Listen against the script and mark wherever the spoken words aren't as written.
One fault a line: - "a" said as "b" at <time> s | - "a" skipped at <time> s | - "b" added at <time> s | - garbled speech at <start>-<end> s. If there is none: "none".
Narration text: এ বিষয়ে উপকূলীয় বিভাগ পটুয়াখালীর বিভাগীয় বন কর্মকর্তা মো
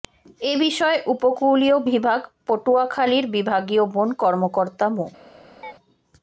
none